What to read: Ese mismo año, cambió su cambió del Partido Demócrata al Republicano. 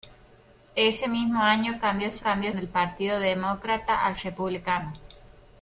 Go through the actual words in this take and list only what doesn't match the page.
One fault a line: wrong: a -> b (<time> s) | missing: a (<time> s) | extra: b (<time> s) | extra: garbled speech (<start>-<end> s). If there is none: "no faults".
no faults